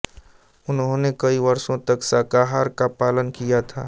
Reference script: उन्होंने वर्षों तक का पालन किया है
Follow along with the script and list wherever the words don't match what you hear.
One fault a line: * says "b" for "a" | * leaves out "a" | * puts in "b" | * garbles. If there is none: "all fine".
* puts in "कई"
* puts in "शाकाहार"
* says "था" for "है"